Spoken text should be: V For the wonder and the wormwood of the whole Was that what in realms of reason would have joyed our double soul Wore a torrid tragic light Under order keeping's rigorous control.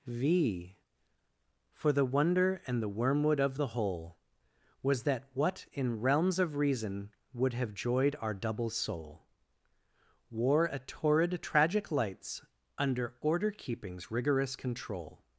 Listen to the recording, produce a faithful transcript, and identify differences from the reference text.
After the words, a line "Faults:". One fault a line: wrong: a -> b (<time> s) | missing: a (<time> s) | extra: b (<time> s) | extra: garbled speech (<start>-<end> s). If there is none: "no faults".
V For the wonder and the wormwood of the whole Was that what in realms of reason would have joyed our double soul Wore a torrid tragic lights Under order keeping's rigorous control.
Faults:
wrong: light -> lights (11.9 s)